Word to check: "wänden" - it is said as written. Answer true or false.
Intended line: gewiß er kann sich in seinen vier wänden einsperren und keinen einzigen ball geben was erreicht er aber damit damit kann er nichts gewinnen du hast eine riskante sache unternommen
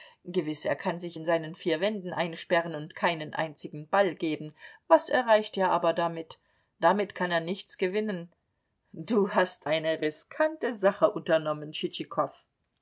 true